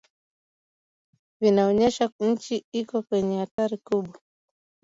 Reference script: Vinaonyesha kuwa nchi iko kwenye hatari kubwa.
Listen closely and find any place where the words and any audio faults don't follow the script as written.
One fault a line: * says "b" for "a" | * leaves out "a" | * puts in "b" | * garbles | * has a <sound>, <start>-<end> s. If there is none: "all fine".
* leaves out "kuwa"
* has a dropout, 3.5-3.6 s